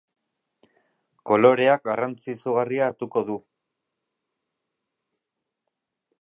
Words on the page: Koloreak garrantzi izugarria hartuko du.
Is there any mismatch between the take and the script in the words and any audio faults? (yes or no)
no